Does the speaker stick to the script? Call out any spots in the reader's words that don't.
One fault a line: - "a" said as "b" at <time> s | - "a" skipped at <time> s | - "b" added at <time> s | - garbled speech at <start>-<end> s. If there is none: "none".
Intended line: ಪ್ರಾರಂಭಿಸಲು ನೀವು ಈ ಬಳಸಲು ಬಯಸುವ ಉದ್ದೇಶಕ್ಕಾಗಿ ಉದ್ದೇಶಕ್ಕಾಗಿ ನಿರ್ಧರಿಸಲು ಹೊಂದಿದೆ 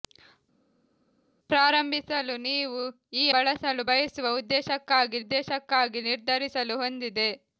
none